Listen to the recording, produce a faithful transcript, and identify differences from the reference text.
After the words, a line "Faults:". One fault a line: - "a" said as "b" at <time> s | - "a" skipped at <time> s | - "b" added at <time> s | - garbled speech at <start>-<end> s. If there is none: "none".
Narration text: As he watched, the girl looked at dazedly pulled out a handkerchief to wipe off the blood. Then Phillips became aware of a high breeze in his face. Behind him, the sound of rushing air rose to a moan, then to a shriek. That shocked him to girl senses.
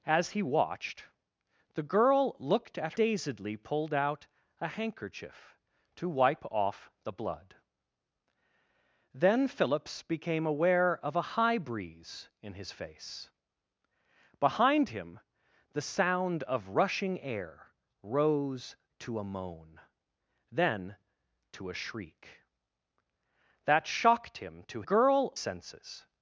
As he watched, the girl looked at dazedly pulled out a handkerchief to wipe off the blood. Then Phillips became aware of a high breeze in his face. Behind him, the sound of rushing air rose to a moan, then to a shriek. That shocked him to girl senses.
Faults:
none